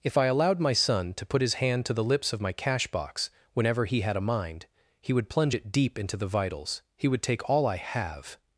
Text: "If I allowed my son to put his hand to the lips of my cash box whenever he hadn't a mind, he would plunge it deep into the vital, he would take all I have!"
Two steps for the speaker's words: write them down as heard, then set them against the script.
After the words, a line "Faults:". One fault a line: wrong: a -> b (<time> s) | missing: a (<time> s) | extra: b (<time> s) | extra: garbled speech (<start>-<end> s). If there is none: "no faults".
"If I allowed my son to put his hand to the lips of my cash box whenever he had a mind, he would plunge it deep into the vitals, he would take all I have!"
Faults:
wrong: hadn't -> had (4.0 s)
wrong: vital -> vitals (6.3 s)